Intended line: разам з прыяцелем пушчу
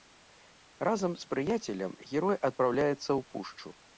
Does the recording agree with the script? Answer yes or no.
no